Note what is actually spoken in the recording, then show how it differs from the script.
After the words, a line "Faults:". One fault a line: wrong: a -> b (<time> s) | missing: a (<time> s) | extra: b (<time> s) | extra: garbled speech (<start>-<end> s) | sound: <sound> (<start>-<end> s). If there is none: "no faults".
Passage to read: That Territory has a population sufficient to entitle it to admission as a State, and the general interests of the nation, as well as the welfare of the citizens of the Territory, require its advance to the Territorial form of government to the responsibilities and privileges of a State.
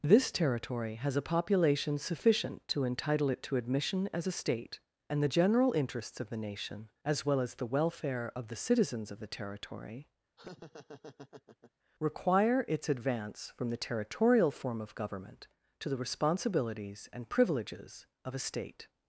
This Territory has a population sufficient to entitle it to admission as a State, and the general interests of the nation, as well as the welfare of the citizens of the Territory, require its advance from the Territorial form of government to the responsibilities and privileges of a State.
Faults:
wrong: That -> This (0.0 s)
sound: laugh (10.4-11.7 s)
wrong: to -> from (13.6 s)